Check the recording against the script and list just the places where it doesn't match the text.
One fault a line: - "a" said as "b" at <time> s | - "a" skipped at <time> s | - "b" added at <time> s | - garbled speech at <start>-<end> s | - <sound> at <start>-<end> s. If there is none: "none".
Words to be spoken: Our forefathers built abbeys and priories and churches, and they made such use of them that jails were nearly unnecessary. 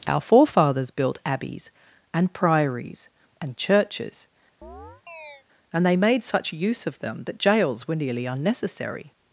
- chirp at 4.6-5.4 s